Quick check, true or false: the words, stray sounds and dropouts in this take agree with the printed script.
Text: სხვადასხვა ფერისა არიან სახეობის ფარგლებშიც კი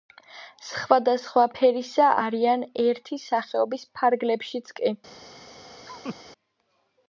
false